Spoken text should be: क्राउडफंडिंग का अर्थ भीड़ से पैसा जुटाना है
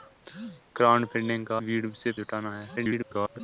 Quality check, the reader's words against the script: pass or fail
fail